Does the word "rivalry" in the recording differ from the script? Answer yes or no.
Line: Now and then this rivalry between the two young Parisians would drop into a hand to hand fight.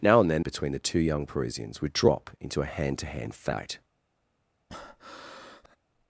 yes